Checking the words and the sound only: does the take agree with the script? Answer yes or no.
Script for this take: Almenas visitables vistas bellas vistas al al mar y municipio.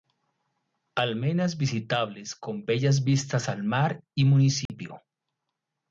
no